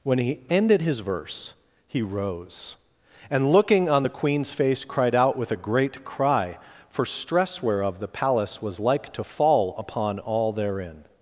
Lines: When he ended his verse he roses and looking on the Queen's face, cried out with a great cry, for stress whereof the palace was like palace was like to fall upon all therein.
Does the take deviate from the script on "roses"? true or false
true